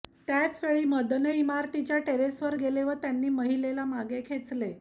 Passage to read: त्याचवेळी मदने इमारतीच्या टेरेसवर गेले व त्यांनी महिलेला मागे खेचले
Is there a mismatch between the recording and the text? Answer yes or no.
no